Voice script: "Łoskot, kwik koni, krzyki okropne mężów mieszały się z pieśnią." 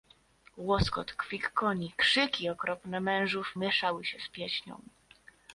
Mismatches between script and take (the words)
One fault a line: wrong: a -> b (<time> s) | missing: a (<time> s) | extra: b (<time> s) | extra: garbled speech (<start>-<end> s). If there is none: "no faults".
no faults